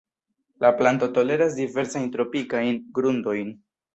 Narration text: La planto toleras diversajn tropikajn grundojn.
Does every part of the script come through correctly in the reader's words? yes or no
yes